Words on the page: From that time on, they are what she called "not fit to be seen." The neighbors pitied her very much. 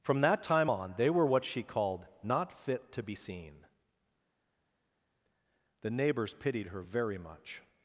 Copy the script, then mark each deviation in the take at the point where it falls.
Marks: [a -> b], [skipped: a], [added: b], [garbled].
From that time on, they [are -> were] what she called "not fit to be seen." The neighbors pitied her very much.